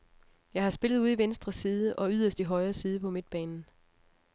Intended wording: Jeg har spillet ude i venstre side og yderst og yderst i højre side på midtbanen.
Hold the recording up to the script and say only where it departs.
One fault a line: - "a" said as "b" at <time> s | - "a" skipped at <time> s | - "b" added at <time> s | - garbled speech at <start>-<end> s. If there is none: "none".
- "og yderst" skipped at 2.4 s